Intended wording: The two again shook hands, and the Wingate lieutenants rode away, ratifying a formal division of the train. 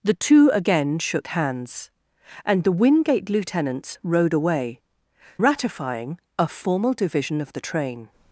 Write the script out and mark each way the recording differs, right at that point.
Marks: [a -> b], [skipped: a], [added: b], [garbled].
The two again shook hands, and the Wingate lieutenants rode away, ratifying a formal division of the train.